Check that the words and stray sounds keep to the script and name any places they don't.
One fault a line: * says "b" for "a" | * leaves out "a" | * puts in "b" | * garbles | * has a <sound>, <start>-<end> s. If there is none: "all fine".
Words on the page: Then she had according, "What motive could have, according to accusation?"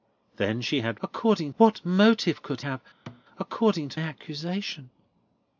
* has a thud, 3.1-3.2 s